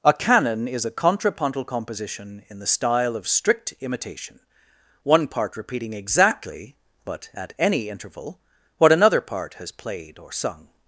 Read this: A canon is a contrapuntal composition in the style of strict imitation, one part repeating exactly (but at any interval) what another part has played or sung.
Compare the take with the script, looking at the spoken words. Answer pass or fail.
pass